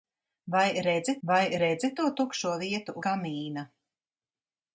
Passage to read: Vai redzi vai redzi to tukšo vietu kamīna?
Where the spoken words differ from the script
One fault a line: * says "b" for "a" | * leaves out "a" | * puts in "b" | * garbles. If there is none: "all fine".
all fine